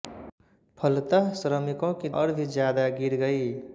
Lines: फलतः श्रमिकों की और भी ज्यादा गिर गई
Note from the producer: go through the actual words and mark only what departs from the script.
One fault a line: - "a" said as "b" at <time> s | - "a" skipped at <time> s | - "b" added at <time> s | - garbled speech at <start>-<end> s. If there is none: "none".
none